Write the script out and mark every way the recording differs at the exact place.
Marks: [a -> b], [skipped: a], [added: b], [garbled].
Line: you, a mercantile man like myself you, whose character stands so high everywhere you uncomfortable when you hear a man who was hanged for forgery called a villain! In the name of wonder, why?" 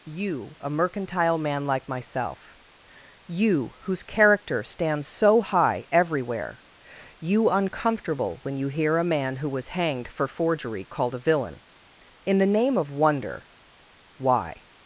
you, a mercantile man like myself you, whose character stands so high everywhere you uncomfortable when you hear a man who was hanged for forgery called a villain! In the name of wonder, why?"